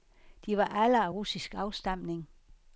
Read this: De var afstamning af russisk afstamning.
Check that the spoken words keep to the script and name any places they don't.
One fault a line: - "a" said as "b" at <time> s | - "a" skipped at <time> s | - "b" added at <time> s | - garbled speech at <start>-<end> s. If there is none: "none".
- "afstamning" said as "alle" at 0.7 s